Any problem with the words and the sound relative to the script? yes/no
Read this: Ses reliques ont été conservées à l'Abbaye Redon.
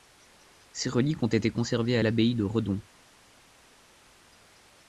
yes